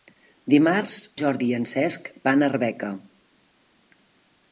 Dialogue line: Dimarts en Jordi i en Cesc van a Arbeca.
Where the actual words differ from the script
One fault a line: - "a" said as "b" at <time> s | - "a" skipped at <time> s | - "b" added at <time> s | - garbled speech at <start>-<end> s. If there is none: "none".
- "en" skipped at 0.9 s